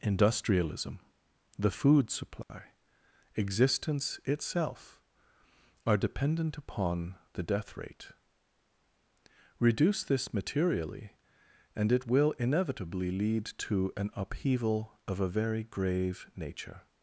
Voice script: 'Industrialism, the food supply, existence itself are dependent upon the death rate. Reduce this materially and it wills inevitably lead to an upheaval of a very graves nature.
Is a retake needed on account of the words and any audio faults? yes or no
yes